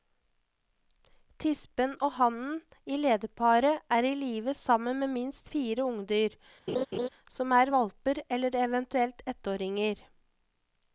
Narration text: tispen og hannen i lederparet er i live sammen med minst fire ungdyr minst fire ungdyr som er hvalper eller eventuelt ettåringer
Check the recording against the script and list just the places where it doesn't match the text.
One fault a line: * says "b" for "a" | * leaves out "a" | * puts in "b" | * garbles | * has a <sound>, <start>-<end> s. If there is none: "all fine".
* leaves out "minst fire ungdyr"
* has a laugh, 6.7-7.1 s